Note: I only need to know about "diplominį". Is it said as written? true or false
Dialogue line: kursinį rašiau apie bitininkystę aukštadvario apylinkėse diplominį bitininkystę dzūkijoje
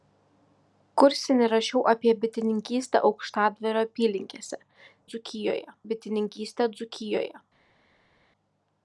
false